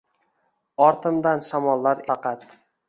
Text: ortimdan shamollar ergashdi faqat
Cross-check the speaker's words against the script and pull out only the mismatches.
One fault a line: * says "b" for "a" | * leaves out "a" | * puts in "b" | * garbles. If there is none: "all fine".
* leaves out "ergashdi"